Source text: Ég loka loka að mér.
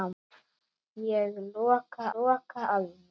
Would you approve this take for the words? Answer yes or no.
yes